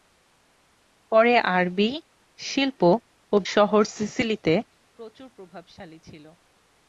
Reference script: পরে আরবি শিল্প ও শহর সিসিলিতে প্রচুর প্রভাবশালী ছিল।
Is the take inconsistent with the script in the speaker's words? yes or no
no